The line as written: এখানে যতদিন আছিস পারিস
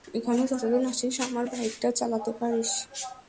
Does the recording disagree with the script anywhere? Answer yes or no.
yes